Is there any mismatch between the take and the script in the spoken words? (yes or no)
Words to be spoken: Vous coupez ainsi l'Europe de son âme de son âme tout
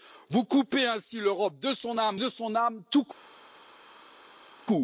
no